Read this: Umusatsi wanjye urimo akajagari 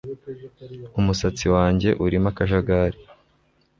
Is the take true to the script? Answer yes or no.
yes